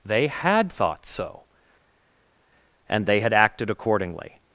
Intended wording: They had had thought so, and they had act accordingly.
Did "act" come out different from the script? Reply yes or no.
yes